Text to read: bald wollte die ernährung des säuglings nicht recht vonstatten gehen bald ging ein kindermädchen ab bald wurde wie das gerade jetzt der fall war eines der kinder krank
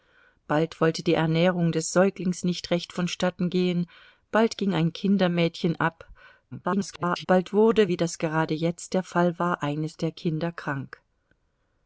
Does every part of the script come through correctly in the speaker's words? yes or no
no